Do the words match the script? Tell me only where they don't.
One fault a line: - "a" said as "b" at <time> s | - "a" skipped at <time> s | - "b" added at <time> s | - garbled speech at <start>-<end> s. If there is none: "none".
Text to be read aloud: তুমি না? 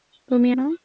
none